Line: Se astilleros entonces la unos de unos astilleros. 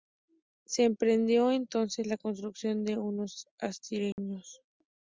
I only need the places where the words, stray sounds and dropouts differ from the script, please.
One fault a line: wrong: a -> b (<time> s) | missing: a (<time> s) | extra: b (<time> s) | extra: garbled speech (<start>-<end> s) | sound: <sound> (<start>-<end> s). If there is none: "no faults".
wrong: astilleros -> emprendió (0.8 s)
wrong: unos -> construcción (2.2 s)
sound: dropout (4.1-4.2 s)